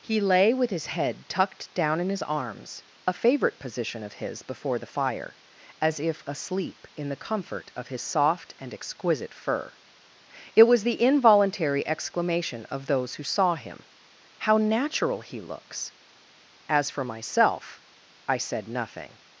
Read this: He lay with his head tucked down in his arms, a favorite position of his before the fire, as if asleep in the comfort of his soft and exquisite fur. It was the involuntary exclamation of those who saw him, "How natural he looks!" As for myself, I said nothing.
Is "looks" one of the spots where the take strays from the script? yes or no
no